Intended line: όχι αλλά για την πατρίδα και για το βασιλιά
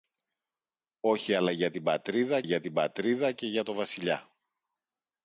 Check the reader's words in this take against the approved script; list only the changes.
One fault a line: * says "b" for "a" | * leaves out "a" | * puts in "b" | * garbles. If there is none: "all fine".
* puts in "για την πατρίδα"